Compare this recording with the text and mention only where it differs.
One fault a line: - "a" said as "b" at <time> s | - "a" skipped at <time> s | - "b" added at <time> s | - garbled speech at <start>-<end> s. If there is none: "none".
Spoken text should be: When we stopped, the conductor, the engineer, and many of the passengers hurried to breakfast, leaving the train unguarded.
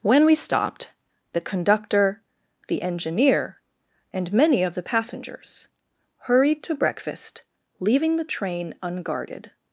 none